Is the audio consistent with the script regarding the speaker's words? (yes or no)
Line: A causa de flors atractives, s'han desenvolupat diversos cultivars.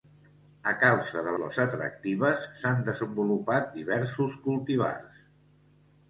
yes